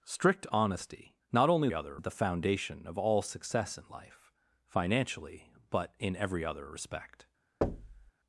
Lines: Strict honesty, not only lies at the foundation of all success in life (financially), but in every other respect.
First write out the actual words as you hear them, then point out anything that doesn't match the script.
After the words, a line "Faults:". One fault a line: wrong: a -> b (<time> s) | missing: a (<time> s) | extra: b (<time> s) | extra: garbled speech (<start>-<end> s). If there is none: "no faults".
Strict honesty, not only other at the foundation of all success in life (financially), but in every other respect.
Faults:
wrong: lies -> other (1.7 s)